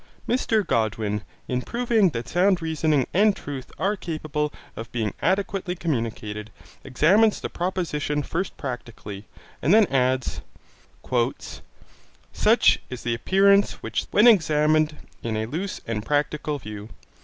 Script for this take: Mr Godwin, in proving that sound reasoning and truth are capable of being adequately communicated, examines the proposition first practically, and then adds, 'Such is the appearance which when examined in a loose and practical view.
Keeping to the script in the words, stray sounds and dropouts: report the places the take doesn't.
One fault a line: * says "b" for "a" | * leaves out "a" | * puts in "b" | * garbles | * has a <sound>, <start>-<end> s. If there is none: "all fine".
all fine